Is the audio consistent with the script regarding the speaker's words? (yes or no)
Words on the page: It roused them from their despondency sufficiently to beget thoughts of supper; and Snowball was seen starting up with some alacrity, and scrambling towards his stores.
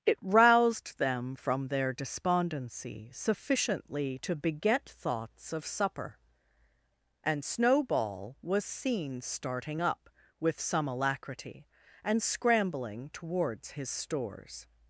yes